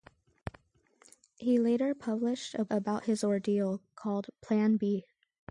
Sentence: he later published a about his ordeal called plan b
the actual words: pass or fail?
pass